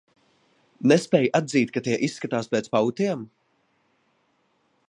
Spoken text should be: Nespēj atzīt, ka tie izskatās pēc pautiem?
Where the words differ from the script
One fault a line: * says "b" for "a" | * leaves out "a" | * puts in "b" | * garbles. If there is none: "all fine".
all fine